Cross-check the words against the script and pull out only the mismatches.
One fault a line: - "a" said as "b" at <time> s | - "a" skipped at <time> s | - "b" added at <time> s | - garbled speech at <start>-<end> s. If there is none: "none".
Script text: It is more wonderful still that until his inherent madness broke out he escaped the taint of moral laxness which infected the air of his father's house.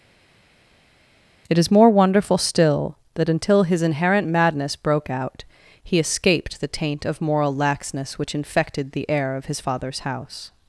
none